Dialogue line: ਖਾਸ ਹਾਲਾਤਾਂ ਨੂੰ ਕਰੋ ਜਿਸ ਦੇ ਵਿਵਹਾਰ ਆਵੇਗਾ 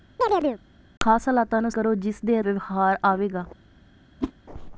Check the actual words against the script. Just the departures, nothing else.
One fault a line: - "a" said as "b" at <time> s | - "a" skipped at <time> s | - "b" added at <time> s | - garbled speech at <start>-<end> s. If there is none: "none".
none